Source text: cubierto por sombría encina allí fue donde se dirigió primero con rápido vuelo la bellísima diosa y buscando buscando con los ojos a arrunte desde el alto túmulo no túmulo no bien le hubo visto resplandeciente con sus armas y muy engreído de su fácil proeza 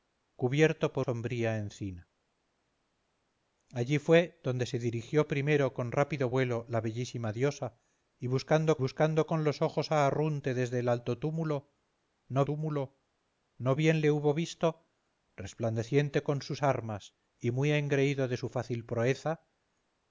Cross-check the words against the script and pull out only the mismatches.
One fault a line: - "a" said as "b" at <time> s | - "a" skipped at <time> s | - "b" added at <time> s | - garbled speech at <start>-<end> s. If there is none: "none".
none